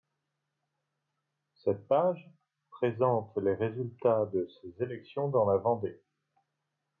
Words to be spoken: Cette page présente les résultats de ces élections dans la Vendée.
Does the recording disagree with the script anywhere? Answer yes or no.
no